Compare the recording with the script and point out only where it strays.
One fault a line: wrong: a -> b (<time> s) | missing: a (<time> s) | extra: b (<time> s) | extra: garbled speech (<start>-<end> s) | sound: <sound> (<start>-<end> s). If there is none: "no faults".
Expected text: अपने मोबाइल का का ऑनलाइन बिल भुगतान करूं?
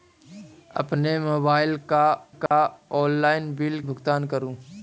sound: dropout (2.5-2.5 s)